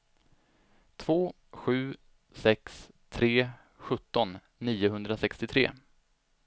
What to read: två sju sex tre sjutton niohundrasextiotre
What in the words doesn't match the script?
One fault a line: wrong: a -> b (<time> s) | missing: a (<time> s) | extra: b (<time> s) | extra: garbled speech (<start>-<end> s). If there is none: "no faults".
no faults